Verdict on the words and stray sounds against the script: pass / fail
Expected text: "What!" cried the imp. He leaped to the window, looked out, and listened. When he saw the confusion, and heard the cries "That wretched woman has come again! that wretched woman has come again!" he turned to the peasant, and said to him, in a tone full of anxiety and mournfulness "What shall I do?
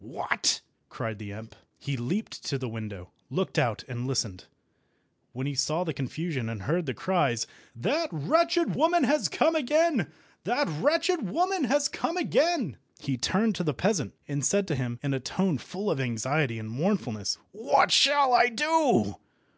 pass